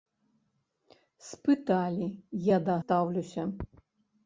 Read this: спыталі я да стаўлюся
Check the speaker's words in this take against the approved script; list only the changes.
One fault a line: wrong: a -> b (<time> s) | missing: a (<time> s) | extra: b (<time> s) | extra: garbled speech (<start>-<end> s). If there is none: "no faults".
no faults